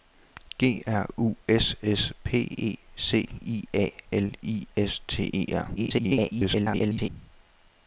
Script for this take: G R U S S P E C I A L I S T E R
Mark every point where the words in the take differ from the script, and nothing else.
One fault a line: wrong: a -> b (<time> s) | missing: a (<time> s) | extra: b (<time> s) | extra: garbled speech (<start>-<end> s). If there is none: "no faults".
extra: garbled speech (5.8-7.1 s)